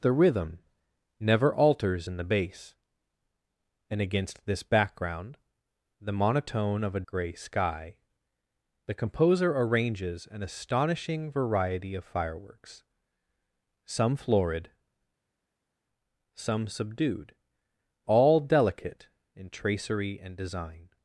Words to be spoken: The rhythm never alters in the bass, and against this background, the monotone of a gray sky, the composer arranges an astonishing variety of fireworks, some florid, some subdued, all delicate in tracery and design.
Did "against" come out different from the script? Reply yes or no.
no